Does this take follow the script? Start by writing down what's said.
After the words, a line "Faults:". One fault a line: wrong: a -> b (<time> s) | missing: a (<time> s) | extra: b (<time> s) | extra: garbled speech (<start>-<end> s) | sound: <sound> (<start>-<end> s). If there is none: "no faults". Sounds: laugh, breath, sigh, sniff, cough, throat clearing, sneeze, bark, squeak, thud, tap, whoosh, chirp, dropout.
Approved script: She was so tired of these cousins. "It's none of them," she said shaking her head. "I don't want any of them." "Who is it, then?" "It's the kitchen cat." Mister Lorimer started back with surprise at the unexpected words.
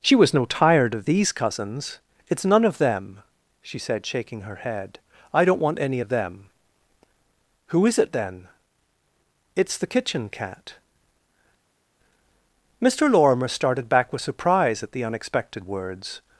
She was no tired of these cousins. "It's none of them," she said shaking her head. "I don't want any of them." "Who is it, then?" "It's the kitchen cat." Mister Lorimer started back with surprise at the unexpected words.
Faults:
wrong: so -> no (0.3 s)